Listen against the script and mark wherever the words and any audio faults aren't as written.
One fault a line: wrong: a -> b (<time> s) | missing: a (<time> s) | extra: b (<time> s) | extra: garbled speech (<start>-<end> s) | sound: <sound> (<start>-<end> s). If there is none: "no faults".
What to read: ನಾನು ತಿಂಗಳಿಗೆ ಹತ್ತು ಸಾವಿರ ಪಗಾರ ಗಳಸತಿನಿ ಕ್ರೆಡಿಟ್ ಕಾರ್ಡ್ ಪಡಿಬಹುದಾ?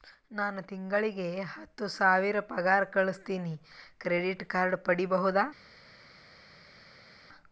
no faults